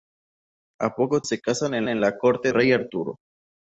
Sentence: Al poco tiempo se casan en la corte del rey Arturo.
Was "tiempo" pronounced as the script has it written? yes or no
no